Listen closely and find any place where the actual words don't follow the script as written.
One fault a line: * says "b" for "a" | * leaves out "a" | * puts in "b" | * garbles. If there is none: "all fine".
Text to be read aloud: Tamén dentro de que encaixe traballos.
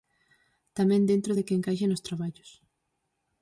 * puts in "nos"